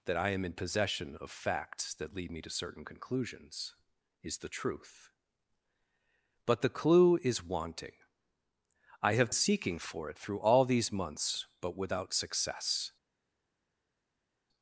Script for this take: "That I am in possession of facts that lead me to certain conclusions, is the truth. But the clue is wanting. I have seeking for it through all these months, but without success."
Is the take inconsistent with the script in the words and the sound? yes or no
no